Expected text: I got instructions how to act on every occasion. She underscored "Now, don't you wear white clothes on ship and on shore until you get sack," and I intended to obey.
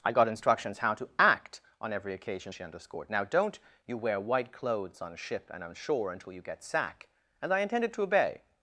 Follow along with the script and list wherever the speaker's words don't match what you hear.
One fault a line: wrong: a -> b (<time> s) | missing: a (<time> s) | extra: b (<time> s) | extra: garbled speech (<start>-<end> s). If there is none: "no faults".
no faults